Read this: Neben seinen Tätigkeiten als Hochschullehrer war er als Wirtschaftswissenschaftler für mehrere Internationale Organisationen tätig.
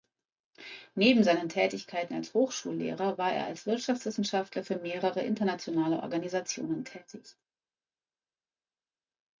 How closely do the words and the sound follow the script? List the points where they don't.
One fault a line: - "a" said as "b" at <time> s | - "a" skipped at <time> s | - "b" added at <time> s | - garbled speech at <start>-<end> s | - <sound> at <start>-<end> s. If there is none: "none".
none